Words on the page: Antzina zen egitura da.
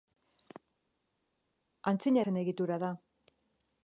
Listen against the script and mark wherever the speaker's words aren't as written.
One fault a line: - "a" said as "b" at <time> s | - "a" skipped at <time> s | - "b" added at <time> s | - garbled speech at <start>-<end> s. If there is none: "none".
none